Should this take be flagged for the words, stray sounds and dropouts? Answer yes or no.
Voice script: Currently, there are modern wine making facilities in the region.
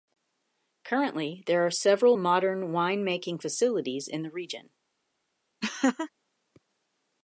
yes